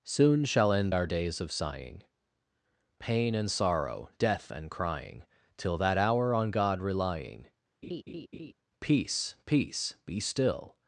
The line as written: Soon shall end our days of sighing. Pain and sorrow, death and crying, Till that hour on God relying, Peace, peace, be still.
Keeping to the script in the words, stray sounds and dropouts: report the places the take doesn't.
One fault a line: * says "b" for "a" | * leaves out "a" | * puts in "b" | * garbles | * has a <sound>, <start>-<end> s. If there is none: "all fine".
* has a laugh, 7.8-8.5 s